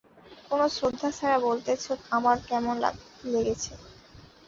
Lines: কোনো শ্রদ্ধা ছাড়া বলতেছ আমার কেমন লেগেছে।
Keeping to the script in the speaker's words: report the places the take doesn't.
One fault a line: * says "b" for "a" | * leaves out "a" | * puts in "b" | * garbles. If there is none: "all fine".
all fine